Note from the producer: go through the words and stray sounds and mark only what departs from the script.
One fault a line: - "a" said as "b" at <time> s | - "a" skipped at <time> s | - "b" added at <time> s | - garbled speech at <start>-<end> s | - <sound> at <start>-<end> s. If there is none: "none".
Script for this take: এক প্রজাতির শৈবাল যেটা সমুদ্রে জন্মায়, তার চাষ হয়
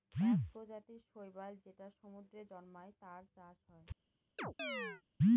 - chirp at 4.4-5.0 s